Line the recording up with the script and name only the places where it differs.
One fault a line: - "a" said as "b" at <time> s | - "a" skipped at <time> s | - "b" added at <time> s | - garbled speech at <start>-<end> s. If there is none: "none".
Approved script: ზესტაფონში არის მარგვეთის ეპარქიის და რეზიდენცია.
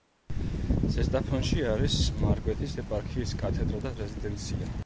- "კათედრა" added at 3.5 s